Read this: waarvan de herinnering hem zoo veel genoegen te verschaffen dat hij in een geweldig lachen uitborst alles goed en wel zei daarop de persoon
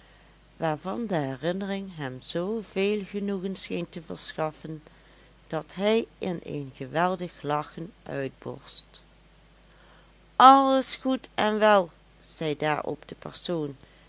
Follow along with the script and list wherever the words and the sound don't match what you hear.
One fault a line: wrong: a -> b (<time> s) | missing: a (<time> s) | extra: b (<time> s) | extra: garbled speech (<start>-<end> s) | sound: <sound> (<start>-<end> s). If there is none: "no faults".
extra: scheen (3.5 s)